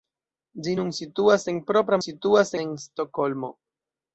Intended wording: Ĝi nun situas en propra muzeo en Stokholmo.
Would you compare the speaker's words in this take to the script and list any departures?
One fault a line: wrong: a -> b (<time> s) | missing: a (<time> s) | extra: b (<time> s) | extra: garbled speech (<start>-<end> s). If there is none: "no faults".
wrong: muzeo -> situas (2.0 s)